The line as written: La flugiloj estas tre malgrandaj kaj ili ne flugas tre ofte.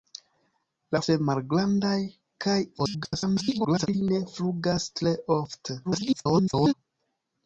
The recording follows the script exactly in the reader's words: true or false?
false